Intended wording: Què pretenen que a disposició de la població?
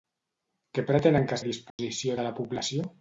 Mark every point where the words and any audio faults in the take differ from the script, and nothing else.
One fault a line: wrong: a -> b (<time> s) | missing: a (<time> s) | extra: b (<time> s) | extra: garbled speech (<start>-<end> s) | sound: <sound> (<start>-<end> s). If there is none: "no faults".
sound: dropout (1.7-1.8 s)